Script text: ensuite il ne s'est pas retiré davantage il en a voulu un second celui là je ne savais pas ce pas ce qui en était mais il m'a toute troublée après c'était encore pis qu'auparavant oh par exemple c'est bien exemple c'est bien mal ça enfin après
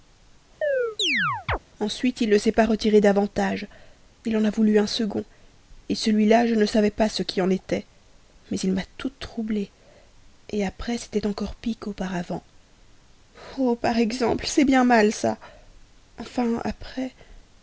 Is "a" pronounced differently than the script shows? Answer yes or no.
no